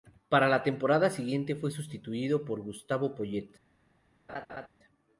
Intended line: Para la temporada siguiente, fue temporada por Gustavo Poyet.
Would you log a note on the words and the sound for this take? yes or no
yes